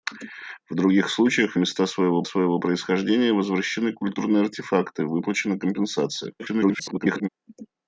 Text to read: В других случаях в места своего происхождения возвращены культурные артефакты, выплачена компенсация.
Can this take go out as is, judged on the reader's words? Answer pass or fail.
fail